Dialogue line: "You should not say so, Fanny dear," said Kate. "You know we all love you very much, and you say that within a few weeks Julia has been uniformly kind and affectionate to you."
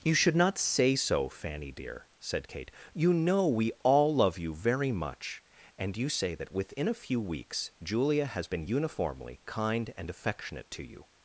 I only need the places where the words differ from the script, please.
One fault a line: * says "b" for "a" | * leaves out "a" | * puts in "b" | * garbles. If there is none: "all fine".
all fine